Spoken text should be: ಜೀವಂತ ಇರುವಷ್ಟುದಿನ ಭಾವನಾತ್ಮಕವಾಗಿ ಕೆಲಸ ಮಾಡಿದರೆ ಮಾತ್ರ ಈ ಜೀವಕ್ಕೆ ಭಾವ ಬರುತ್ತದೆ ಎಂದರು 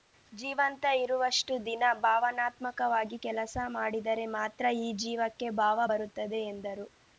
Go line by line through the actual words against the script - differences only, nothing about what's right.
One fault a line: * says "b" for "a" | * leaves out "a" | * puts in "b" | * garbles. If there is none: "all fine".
all fine